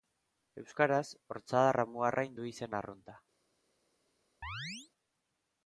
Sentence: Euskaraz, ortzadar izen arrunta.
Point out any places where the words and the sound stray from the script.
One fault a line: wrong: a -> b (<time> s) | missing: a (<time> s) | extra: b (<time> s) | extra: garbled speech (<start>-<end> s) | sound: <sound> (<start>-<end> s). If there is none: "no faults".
extra: amuarrain du (1.9 s)
sound: chirp (4.4-4.9 s)